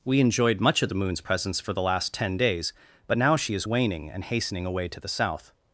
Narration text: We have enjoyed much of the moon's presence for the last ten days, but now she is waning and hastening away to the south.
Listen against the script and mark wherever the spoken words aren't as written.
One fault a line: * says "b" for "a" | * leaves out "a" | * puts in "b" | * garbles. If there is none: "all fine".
* leaves out "have"